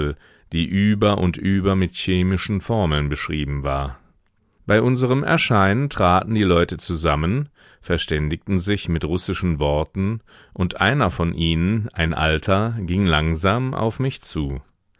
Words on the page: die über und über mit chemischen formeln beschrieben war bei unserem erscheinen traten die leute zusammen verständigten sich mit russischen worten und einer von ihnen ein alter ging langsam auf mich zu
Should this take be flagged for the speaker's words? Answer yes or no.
no